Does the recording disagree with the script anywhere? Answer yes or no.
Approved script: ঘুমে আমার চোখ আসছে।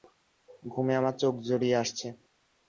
yes